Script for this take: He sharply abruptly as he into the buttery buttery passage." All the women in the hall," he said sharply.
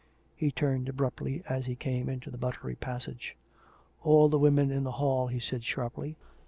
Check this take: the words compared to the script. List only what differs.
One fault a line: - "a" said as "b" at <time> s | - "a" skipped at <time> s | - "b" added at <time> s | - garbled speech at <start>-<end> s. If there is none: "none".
- "sharply" said as "turned" at 0.5 s
- "came" added at 1.8 s
- "buttery" skipped at 2.8 s